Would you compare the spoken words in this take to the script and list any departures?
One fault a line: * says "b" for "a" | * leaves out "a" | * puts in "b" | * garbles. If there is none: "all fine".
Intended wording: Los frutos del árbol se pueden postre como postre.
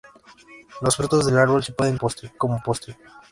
all fine